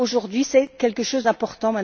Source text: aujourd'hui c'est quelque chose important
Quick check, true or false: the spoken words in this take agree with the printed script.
true